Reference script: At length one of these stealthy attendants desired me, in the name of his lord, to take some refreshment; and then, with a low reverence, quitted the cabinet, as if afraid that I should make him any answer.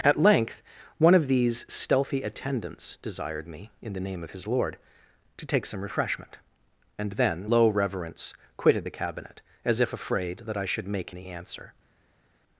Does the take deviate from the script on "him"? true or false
true